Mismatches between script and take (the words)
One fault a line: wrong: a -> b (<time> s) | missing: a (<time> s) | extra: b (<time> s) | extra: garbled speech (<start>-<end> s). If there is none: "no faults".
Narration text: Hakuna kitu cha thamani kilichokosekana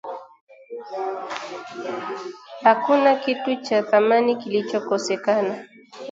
no faults